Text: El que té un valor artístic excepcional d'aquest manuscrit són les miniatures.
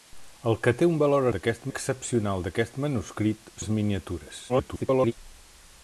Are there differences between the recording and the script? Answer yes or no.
yes